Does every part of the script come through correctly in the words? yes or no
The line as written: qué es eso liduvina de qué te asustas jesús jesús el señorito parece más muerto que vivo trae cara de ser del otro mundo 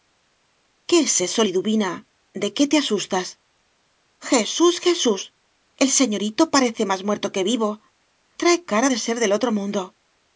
yes